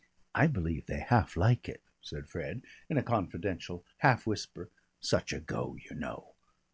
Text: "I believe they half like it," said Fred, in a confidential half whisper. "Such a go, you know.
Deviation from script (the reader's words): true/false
false